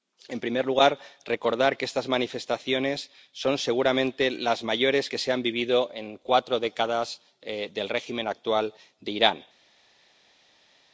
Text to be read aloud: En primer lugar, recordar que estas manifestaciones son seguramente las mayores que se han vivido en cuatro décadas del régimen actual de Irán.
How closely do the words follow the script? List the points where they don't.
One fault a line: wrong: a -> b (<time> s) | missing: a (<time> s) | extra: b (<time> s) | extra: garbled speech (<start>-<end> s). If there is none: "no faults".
no faults